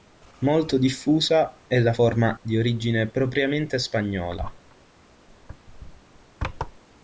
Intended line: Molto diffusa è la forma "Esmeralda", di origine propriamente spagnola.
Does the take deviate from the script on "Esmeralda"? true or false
true